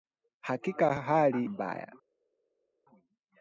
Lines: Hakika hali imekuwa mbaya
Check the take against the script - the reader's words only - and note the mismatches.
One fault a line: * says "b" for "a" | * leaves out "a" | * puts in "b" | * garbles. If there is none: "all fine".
* leaves out "imekuwa"